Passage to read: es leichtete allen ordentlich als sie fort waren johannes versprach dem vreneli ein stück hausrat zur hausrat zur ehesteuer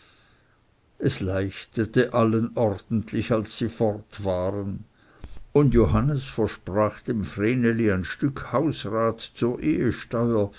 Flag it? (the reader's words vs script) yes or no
yes